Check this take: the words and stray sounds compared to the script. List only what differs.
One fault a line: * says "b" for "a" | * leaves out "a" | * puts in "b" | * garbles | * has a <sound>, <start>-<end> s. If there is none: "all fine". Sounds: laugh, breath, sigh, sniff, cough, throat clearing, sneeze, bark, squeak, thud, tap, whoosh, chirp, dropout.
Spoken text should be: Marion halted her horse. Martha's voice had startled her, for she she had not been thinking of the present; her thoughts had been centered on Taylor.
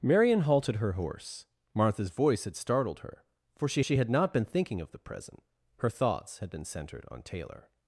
all fine